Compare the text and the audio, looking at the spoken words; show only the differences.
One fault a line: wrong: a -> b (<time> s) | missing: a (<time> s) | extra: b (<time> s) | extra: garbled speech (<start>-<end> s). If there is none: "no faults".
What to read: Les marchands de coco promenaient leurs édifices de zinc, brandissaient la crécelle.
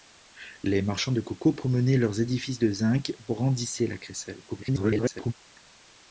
extra: garbled speech (4.5-5.3 s)